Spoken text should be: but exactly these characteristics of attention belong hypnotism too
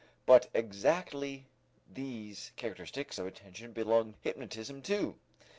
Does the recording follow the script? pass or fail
pass